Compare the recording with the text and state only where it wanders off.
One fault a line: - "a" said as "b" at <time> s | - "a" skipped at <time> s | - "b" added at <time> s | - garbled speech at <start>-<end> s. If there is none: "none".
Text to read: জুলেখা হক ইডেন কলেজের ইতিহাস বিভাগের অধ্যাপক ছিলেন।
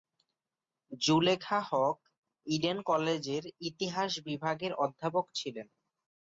none